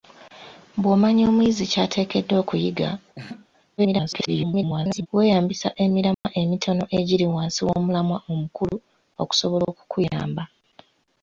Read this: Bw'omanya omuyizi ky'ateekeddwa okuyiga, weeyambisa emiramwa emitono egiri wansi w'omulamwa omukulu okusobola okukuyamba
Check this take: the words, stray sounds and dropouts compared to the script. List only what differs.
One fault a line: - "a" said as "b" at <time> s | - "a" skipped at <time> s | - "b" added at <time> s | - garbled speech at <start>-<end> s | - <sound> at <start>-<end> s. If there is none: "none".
- laugh at 3.1-3.5 s
- garbled speech at 3.8-5.1 s
- dropout at 6.1-6.2 s